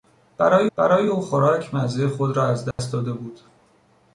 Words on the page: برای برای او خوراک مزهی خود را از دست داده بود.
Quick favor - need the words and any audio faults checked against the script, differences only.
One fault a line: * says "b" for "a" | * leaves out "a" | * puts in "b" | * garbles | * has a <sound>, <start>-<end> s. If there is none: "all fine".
* has a dropout, 2.7-2.8 s